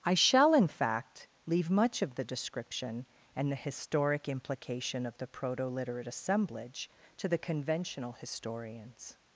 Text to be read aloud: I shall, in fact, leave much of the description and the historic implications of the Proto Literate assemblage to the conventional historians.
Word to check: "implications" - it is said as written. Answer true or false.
false